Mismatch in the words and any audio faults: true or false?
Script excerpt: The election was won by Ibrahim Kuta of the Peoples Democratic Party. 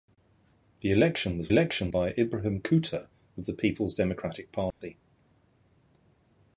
true